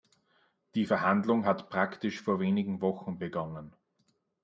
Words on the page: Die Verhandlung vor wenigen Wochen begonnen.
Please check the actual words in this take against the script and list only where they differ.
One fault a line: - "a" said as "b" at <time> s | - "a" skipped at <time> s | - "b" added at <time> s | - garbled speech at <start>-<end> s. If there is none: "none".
- "hat praktisch" added at 1.4 s